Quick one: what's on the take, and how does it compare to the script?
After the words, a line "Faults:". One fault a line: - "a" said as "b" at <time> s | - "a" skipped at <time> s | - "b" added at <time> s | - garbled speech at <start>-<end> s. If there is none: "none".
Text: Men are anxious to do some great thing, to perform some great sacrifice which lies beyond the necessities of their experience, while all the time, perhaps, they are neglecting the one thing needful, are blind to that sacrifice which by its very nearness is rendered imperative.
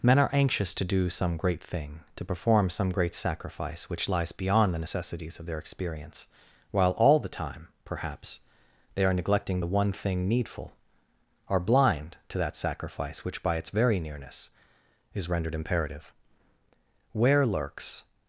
Men are anxious to do some great thing, to perform some great sacrifice which lies beyond the necessities of their experience, while all the time, perhaps, they are neglecting the one thing needful, are blind to that sacrifice which by its very nearness is rendered imperative. Where lurks
Faults:
- "Where lurks" added at 17.1 s